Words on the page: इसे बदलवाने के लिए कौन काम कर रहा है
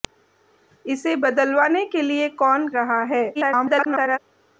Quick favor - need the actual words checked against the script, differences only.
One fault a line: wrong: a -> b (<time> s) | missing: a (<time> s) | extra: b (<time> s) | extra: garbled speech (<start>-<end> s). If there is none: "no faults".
missing: काम कर (2.7 s)
extra: garbled speech (3.3-4.2 s)